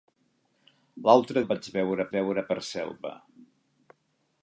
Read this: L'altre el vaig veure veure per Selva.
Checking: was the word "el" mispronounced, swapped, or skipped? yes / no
no